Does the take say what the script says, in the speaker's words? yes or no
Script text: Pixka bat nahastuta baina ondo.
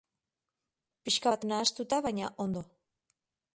yes